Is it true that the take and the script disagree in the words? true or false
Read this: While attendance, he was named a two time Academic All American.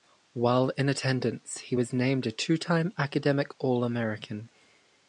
true